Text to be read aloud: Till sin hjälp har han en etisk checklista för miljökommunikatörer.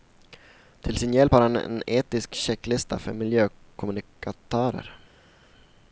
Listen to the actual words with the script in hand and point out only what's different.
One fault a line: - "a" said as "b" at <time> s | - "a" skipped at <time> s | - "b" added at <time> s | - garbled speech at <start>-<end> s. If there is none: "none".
none